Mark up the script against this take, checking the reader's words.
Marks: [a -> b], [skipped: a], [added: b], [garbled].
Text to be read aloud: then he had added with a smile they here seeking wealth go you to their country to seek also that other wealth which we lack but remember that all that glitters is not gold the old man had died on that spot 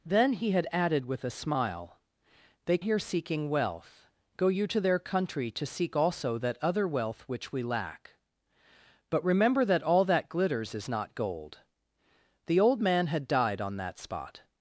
then he had added with a smile they here seeking wealth go you to their country to seek also that other wealth which we lack but remember that all that glitters is not gold the old man had died on that spot